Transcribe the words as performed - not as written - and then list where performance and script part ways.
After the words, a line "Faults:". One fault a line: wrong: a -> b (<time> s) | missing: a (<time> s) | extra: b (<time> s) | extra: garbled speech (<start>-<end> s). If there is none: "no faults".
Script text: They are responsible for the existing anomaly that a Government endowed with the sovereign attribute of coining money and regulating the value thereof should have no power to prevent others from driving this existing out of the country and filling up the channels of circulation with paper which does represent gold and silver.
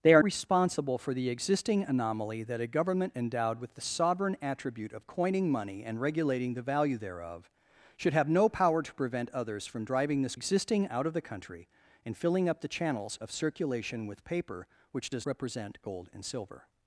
They are responsible for the existing anomaly that a Government endowed with the sovereign attribute of coining money and regulating the value thereof should have no power to prevent others from driving this existing out of the country and filling up the channels of circulation with paper which does represent gold and silver.
Faults:
no faults